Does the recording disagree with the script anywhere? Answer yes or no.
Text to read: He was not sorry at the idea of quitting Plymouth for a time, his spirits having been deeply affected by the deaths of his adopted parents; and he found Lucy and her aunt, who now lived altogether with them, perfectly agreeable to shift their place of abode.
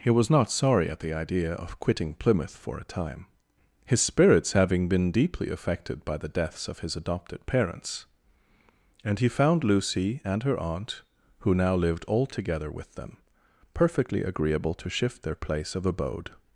no